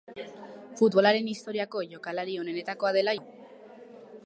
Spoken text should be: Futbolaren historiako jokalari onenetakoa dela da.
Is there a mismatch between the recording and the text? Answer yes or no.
no